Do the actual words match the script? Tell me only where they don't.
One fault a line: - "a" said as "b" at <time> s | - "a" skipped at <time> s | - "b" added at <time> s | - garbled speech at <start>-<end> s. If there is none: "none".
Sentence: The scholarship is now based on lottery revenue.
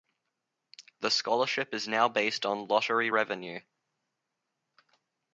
none